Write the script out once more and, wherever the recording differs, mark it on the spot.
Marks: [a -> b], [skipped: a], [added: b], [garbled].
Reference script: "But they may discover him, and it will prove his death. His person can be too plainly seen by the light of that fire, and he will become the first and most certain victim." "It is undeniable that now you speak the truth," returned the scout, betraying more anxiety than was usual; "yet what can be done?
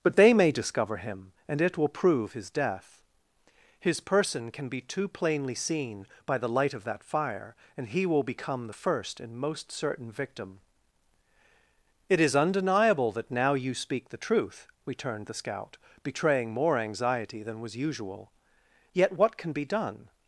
"But they may discover him, and it will prove his death. His person can be too plainly seen by the light of that fire, and he will become the first and most certain victim." "It is undeniable that now you speak the truth," returned the scout, betraying more anxiety than was usual; "yet what can be done?